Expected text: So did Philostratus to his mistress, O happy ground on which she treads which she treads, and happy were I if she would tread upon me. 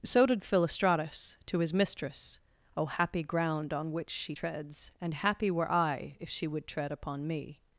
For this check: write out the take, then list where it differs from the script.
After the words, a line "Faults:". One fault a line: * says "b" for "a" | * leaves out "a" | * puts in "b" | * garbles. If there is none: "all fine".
So did Philostratus to his mistress, O happy ground on which she treads, and happy were I if she would tread upon me.
Faults:
* leaves out "which she treads"